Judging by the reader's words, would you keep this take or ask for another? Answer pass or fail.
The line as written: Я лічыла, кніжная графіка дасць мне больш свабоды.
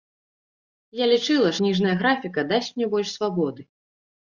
pass